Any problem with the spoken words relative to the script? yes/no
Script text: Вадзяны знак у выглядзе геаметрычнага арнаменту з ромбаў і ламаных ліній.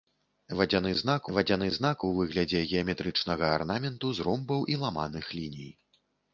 yes